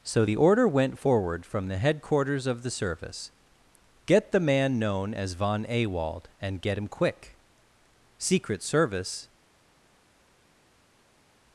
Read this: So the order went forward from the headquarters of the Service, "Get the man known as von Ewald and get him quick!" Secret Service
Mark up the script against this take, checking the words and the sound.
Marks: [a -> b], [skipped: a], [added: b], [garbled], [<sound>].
So the order went forward from the headquarters of the Service, "Get the man known as von Ewald and get him quick!" Secret Service